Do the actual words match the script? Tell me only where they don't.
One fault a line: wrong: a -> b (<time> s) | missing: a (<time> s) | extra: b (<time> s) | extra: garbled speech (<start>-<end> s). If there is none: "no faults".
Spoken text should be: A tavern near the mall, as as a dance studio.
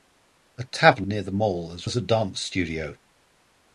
no faults